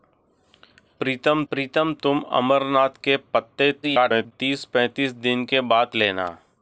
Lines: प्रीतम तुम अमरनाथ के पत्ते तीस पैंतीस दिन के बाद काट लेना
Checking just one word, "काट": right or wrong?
wrong